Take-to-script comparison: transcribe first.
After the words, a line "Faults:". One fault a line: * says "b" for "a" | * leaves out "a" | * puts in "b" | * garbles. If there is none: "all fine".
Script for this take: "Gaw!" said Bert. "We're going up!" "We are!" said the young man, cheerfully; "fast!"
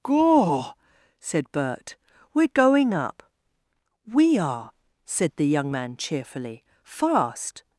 "Gaw!" said Bert. "We're going up!" "We are!" said the young man, cheerfully; "fast!"
Faults:
all fine